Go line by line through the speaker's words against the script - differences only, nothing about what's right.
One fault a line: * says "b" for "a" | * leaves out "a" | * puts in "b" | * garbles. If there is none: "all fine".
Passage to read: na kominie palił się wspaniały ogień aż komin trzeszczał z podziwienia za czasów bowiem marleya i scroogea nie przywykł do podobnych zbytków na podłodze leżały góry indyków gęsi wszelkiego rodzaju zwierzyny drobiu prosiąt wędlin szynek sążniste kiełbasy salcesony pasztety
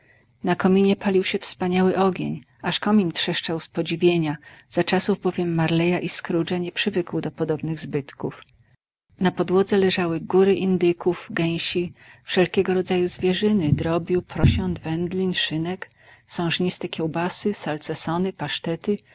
all fine